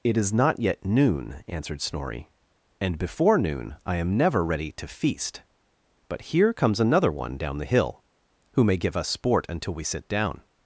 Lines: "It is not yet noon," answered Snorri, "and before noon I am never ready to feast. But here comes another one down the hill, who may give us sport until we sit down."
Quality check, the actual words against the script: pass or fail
pass